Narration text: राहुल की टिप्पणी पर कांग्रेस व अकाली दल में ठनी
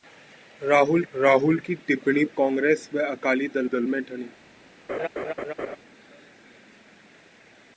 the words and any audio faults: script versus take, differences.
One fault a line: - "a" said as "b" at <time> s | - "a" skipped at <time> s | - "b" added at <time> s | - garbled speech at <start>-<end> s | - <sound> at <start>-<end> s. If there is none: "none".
- "राहुल" added at 1.1 s
- "पर" skipped at 2.2 s
- "दल" added at 3.6 s
- laugh at 4.9-5.8 s